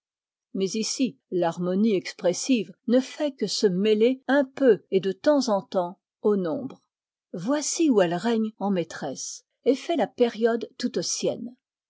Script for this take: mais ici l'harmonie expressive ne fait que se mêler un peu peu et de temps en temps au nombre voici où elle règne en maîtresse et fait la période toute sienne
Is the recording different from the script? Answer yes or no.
yes